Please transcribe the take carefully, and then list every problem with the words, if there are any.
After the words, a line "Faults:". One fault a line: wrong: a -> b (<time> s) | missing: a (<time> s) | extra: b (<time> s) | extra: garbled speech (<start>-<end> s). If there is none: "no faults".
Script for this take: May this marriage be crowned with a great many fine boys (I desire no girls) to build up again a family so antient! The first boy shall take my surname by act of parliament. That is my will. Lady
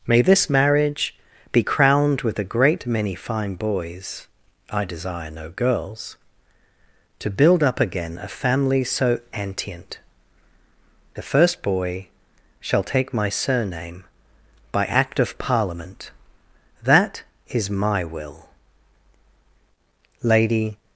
May this marriage be crowned with a great many fine boys (I desire no girls) to build up again a family so antient! The first boy shall take my surname by act of parliament. That is my will. Lady
Faults:
no faults